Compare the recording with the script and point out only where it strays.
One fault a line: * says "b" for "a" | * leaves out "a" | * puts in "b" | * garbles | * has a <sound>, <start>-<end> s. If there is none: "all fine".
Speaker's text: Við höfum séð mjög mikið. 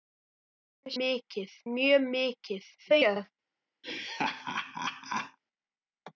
* says "mikið" for "séð"
* garbles
* has a laugh, 3.8-5.4 s